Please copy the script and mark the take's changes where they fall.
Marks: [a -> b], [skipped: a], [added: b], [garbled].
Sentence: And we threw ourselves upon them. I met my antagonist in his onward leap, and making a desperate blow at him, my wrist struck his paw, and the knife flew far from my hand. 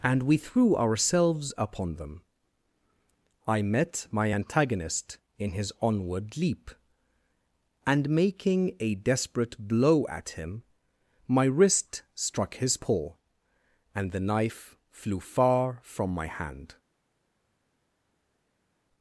And we threw ourselves upon them. I met my antagonist in his onward leap, and making a desperate blow at him, my wrist struck his paw, and the knife flew far from my hand.